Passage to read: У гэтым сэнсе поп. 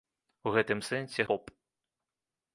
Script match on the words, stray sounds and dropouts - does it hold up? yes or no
yes